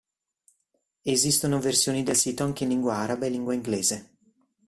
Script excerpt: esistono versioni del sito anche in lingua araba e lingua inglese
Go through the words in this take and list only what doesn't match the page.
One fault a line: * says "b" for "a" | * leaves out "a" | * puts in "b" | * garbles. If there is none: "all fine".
all fine